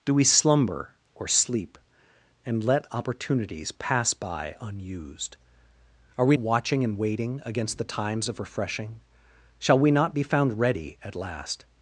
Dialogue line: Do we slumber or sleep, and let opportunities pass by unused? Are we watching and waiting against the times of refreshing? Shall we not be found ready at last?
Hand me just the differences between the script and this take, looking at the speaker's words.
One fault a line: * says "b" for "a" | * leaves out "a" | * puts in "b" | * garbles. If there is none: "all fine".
all fine